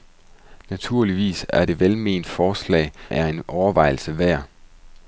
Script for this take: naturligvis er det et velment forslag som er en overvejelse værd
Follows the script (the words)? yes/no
no